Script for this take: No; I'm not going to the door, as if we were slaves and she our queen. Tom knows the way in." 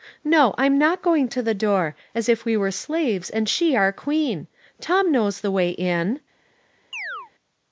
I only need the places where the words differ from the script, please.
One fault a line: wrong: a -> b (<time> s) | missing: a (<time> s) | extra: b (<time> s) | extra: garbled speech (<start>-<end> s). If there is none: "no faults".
no faults